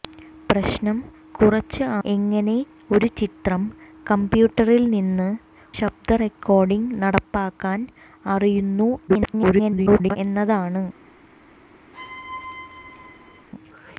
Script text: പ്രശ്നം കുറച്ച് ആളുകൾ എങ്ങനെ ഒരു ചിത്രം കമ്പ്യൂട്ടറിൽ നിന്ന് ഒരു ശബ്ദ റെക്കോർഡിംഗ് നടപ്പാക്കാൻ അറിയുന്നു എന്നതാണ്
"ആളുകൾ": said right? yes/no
no